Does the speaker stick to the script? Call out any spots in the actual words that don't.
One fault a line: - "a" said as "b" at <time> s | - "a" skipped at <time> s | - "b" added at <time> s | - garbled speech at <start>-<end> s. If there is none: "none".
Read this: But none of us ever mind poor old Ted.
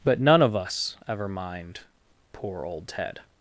none